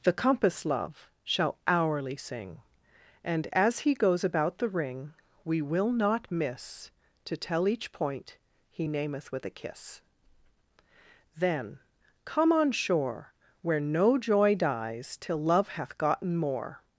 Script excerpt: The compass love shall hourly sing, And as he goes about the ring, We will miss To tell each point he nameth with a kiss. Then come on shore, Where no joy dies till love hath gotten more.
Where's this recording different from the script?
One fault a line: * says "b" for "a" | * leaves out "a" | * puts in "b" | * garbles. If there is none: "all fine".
* puts in "not"